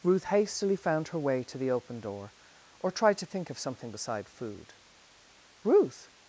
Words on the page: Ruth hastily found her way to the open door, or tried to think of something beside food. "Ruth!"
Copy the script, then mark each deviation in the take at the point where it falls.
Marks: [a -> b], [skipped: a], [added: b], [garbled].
Ruth hastily found her way to the open door, or tried to think of something beside food. "Ruth!"